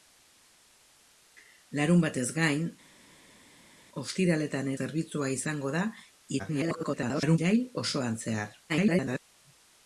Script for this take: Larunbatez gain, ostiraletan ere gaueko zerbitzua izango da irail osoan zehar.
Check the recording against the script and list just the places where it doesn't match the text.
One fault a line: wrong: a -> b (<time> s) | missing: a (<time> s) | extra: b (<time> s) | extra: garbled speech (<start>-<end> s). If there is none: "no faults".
missing: ere gaueko (4.7 s)
extra: garbled speech (6.4-7.4 s)
extra: garbled speech (8.7-9.2 s)